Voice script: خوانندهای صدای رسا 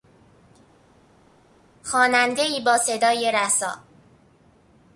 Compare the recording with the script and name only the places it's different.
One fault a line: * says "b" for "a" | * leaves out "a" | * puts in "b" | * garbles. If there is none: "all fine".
* puts in "با"